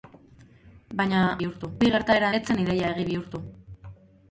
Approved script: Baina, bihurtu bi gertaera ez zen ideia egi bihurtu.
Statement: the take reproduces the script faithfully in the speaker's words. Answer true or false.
true